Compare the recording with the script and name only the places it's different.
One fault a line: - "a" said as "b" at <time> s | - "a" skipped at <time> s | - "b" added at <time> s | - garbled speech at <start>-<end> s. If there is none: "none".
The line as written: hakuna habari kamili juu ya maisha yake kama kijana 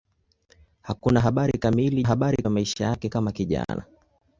- "juu" said as "habari" at 2.1 s